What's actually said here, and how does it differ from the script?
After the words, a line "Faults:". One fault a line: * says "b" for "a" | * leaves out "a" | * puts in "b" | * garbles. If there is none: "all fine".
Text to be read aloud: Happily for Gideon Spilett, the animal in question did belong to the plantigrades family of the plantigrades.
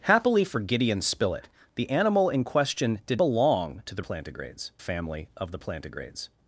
Happily for Gideon Spilett, the animal in question did belong to the plantigrades family of the plantigrades.
Faults:
all fine